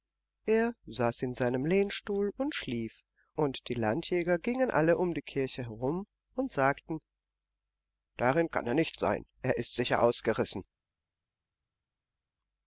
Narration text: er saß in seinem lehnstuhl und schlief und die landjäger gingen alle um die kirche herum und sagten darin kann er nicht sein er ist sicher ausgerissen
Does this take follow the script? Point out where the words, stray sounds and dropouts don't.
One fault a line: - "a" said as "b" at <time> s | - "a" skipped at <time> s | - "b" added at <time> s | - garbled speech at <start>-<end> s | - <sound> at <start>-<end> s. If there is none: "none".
none